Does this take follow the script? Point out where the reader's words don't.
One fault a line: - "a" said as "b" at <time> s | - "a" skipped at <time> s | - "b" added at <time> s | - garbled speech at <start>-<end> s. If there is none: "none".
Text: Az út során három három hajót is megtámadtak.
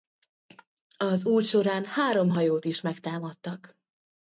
- "három" skipped at 2.3 s